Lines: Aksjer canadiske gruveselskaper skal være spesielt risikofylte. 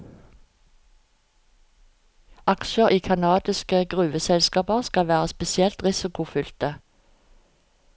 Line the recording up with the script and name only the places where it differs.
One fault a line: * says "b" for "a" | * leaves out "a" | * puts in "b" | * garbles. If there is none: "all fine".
* puts in "i"